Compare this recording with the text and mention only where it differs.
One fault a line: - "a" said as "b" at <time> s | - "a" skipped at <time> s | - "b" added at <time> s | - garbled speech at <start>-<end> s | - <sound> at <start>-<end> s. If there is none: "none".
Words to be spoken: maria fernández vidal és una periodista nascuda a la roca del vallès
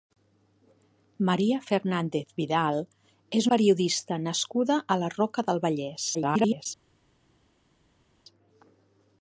- "una" skipped at 3.5 s
- garbled speech at 6.1-6.7 s